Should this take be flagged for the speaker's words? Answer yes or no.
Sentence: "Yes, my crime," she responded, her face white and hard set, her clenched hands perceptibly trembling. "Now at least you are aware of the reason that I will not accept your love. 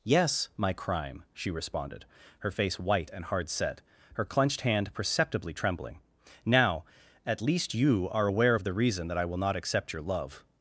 yes